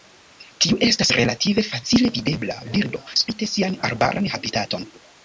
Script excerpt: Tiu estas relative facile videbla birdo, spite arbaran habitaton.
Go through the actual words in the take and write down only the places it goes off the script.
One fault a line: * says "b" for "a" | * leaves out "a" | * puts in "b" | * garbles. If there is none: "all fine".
* puts in "sian"